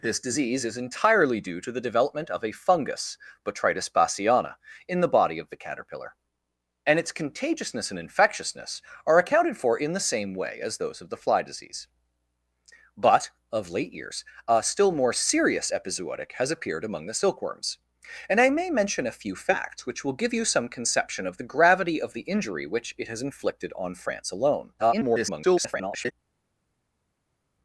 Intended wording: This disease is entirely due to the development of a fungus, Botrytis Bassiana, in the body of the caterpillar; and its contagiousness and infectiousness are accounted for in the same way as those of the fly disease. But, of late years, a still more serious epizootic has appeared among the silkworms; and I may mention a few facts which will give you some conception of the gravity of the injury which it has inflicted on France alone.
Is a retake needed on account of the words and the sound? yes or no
yes